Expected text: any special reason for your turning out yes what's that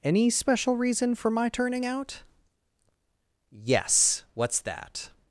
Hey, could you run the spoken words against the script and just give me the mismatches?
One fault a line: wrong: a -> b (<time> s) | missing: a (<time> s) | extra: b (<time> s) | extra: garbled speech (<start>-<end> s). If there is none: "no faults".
wrong: your -> my (1.3 s)